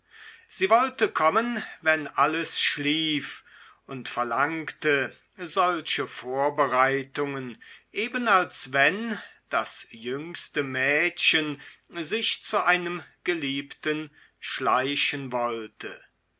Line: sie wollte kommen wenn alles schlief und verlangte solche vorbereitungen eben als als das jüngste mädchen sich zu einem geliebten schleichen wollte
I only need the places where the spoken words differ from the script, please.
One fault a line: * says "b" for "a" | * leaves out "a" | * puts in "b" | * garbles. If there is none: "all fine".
* says "wenn" for "als"